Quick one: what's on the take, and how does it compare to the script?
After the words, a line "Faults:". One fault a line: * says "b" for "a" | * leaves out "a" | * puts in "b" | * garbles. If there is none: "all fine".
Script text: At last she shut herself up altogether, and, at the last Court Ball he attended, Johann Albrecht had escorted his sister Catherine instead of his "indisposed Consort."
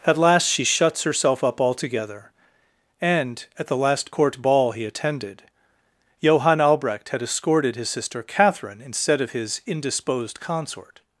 At last she shuts herself up altogether, and, at the last Court Ball he attended, Johann Albrecht had escorted his sister Catherine instead of his "indisposed Consort."
Faults:
* says "shuts" for "shut"